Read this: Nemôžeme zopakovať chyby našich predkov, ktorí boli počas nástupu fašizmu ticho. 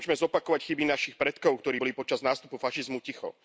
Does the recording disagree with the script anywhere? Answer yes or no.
no